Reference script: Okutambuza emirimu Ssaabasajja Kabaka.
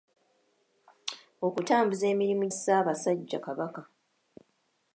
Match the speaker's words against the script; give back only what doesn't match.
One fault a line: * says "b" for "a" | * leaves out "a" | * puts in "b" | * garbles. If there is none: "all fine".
all fine